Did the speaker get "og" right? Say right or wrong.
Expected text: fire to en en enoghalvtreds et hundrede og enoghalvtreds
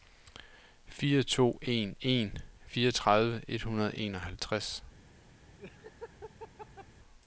right